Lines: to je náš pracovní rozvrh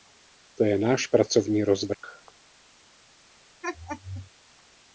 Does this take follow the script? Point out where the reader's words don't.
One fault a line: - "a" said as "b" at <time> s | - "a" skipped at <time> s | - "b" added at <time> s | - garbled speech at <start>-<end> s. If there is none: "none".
none